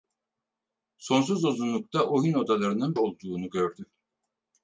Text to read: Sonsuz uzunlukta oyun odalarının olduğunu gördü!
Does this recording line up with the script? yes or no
yes